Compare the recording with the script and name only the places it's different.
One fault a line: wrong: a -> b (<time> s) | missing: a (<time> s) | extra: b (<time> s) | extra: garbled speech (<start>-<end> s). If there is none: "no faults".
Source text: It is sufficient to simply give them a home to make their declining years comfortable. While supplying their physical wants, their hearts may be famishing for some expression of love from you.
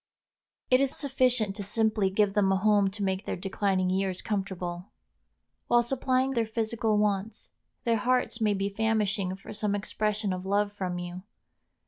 no faults